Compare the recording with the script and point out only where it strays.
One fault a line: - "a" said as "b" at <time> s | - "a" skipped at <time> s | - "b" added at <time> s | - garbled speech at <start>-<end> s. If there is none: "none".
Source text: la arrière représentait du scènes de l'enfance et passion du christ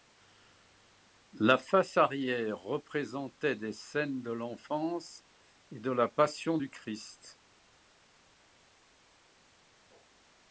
- "face" added at 1.6 s
- "du" said as "des" at 3.5 s
- "de la" added at 5.8 s